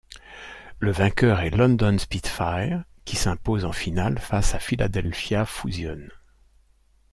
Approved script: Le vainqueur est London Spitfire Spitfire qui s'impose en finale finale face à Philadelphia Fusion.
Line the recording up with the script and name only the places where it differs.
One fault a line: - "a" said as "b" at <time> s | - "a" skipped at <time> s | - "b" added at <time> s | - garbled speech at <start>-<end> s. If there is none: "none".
- "Spitfire" skipped at 2.8 s
- "finale" skipped at 4.2 s